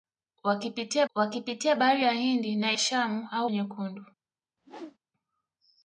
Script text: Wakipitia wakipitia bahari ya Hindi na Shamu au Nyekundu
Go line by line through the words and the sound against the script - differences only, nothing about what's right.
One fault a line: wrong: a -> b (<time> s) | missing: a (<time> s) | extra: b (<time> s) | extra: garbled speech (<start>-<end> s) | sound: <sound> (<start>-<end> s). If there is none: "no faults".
sound: whoosh (4.6-5.0 s)